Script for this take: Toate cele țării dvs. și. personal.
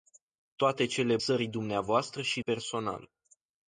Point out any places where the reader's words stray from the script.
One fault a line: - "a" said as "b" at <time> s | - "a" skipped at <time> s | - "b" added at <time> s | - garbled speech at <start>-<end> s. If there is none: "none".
none